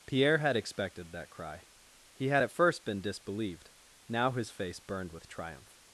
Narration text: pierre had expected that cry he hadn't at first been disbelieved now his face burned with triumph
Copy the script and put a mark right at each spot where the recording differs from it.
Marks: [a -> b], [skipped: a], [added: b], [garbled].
pierre had expected that cry he [hadn't -> had] at first been disbelieved now his face burned with triumph